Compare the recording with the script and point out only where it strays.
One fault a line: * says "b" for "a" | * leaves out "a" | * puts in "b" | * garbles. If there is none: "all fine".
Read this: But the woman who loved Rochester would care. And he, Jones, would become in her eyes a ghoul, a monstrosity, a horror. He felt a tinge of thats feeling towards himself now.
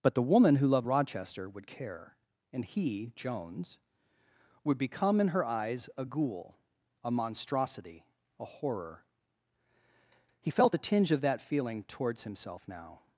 * says "that" for "thats"